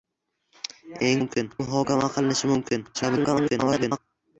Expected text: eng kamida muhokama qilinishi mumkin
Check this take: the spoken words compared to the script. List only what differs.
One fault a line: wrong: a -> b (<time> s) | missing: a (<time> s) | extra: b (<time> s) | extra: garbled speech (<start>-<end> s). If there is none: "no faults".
wrong: kamida -> mumkin (1.2 s)
extra: garbled speech (2.9-4.0 s)